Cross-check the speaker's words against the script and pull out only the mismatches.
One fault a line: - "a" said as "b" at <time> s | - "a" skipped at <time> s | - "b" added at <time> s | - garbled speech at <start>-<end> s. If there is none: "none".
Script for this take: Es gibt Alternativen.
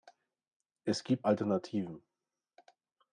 none